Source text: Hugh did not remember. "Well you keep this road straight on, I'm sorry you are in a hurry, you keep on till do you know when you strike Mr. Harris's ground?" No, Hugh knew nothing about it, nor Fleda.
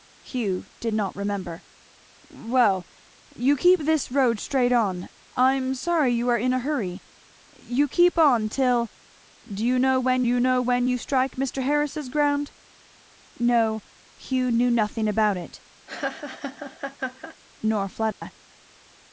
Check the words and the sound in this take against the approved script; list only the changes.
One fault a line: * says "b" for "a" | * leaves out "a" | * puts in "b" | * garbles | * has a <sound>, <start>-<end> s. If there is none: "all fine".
* puts in "know when you"
* has a laugh, 15.9-17.4 s
* has a dropout, 18.1-18.2 s